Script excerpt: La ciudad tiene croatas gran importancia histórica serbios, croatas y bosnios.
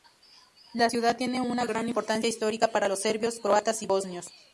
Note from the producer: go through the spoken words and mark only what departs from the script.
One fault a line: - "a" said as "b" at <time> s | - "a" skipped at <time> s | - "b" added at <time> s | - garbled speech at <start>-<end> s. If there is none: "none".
- "croatas" said as "una" at 1.4 s
- "para los" added at 2.7 s